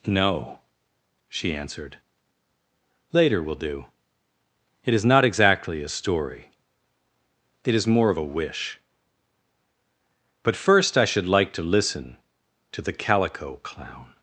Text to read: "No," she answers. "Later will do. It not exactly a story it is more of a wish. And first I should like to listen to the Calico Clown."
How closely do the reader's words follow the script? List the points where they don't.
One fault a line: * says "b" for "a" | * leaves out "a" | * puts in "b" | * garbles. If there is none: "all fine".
* says "answered" for "answers"
* puts in "is"
* says "But" for "And"